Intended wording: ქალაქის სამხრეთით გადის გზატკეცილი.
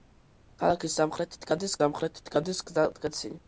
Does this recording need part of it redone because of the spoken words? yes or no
yes